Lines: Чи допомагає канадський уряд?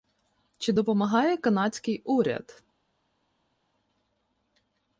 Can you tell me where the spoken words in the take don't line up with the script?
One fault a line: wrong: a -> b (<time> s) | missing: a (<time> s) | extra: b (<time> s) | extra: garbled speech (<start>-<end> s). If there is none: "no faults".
no faults